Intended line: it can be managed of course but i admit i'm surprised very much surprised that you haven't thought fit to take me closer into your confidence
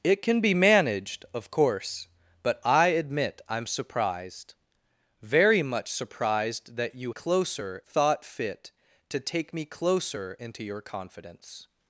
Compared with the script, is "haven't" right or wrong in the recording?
wrong